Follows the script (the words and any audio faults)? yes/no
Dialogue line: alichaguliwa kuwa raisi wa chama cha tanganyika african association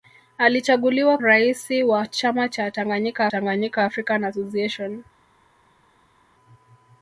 no